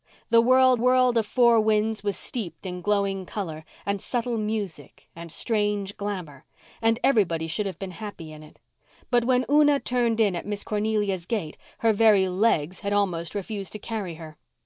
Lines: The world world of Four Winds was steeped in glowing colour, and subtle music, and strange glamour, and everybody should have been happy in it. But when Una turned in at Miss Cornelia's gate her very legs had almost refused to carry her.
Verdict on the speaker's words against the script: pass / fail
pass